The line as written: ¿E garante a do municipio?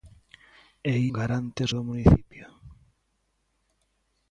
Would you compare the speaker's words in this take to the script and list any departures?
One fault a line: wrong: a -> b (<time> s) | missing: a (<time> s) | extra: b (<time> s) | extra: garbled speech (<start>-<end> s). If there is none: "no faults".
no faults